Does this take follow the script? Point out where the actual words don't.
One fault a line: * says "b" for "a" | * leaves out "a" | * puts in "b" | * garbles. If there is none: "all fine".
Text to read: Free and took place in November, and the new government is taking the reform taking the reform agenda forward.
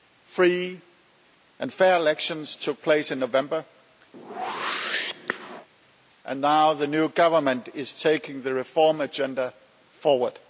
* puts in "fair elections"
* puts in "now"
* leaves out "taking the reform"